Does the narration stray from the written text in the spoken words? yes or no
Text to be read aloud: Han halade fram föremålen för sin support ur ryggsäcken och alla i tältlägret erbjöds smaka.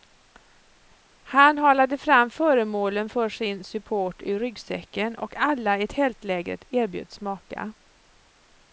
no